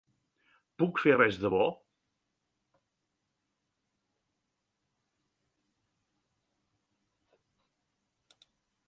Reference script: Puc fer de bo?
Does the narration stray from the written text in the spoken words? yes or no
yes